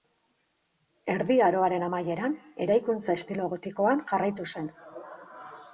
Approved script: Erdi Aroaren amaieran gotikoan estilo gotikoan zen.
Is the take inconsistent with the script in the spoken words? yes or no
yes